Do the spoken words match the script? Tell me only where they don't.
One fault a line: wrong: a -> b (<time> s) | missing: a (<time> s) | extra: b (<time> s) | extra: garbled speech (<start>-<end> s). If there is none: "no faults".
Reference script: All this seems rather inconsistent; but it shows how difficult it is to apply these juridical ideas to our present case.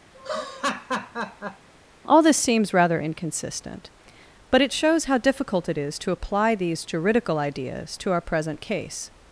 no faults